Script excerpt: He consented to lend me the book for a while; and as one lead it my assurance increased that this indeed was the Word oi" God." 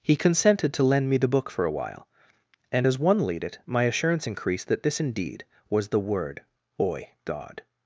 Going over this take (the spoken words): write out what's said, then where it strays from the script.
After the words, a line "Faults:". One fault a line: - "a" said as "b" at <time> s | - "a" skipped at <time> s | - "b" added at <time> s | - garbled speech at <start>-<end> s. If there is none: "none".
He consented to lend me the book for a while; and as one lead it my assurance increased that this indeed was the Word oi" God."
Faults:
none